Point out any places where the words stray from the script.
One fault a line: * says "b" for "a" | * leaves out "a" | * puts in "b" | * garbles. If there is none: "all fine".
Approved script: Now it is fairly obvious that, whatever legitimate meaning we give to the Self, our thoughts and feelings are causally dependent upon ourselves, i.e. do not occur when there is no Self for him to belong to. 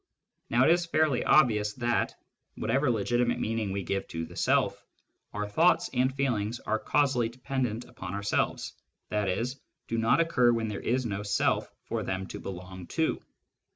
* says "them" for "him"